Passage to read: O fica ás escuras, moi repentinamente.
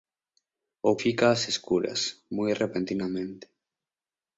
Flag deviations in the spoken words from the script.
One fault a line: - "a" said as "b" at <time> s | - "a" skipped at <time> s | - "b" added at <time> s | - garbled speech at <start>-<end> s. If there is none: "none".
none